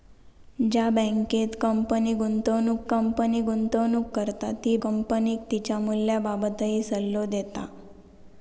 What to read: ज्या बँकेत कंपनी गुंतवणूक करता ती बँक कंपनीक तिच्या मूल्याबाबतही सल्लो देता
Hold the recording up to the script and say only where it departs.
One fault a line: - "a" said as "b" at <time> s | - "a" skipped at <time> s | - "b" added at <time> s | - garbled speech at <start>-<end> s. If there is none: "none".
- "कंपनी गुंतवणूक" added at 2.9 s
- "बँक" skipped at 4.8 s